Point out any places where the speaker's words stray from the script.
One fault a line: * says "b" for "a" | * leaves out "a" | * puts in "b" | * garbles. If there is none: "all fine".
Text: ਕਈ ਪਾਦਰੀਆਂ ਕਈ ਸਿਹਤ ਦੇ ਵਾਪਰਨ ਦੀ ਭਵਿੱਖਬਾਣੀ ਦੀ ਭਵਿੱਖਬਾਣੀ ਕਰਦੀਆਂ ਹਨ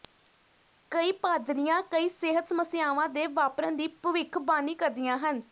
* puts in "ਸਮੱਸਿਆਵਾਂ"
* leaves out "ਦੀ ਭਵਿੱਖਬਾਣੀ"